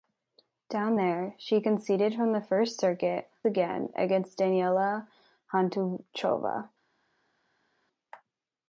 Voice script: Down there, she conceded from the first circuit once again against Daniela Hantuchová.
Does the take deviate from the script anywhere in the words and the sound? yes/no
yes